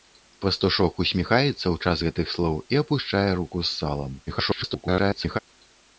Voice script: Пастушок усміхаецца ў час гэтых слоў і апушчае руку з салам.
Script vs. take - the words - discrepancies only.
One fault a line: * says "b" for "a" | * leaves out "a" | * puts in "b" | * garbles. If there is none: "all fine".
* garbles